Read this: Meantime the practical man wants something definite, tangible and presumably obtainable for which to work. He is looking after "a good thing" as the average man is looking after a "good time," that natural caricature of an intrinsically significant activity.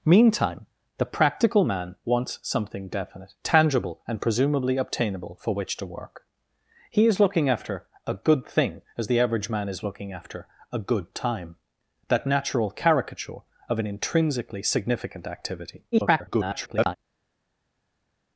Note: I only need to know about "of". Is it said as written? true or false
true